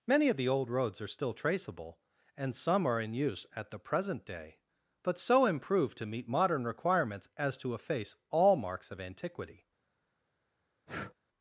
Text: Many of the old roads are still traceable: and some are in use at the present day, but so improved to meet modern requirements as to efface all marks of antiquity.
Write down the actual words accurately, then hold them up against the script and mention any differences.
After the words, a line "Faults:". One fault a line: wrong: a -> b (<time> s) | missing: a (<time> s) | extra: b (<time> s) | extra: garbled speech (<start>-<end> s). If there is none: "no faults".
Many of the old roads are still traceable: and some are in use at the present day, but so improved to meet modern requirements as to efface all marks of antiquity.
Faults:
no faults